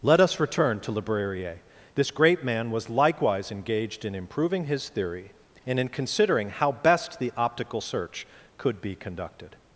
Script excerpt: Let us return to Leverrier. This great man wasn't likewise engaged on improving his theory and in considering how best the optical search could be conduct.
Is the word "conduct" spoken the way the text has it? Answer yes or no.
no